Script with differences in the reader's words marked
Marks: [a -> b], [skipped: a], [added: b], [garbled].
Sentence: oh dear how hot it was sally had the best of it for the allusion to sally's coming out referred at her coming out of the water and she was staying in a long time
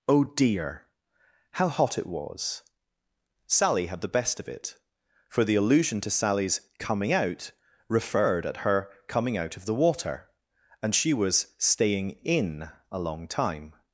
oh dear how hot it was sally had the best of it for the allusion to sally's coming out referred at her coming out of the water and she was staying in a long time